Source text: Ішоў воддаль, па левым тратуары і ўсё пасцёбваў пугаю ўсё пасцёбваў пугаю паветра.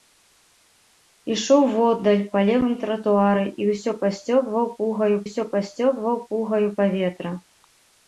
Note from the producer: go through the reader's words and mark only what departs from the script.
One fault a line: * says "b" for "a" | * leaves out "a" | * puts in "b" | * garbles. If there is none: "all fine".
all fine